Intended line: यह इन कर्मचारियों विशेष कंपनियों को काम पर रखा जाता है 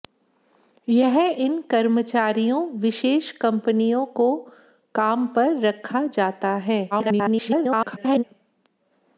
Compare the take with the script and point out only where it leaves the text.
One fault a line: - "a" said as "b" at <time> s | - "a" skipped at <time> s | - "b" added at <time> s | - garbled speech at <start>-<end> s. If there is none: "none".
- garbled speech at 6.9-8.2 s